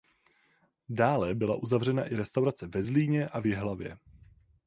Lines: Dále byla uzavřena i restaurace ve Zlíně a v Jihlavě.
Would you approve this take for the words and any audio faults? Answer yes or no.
yes